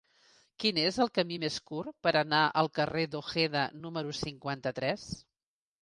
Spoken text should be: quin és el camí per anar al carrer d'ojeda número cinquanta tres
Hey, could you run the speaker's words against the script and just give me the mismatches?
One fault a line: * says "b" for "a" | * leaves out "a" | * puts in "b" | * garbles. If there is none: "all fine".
* puts in "més curt"